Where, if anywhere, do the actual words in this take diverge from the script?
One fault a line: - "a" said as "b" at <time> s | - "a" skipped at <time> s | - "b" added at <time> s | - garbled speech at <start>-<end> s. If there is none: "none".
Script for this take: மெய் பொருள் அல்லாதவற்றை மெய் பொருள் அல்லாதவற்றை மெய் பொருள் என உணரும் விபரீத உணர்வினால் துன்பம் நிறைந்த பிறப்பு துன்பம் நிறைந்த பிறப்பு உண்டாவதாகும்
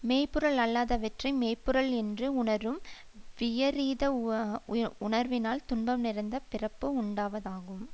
- "அல்லாதவற்றை மெய் பொருள் என" said as "என்று" at 2.0 s
- "துன்பம் நிறைந்த பிறப்பு" skipped at 6.9 s